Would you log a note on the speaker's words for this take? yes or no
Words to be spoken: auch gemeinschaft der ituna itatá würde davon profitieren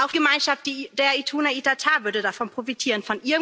no